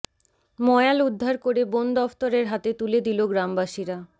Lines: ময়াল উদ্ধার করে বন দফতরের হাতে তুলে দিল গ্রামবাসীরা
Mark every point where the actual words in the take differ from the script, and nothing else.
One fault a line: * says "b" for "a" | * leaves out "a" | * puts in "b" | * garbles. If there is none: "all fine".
all fine